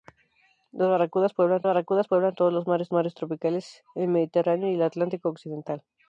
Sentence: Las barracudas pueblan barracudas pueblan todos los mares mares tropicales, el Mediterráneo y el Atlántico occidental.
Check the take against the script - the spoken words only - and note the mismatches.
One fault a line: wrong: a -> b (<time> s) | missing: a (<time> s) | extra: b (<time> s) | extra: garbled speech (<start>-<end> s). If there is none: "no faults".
no faults